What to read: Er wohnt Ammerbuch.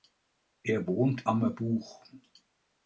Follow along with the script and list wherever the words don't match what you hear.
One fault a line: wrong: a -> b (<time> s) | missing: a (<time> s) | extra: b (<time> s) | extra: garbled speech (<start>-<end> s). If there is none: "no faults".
no faults